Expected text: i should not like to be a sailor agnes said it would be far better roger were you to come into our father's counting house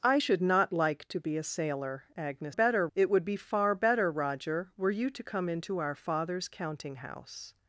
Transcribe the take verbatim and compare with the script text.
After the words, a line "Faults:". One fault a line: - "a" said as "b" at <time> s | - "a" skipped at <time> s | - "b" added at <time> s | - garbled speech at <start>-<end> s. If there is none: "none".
i should not like to be a sailor agnes better it would be far better roger were you to come into our father's counting house
Faults:
- "said" said as "better" at 2.5 s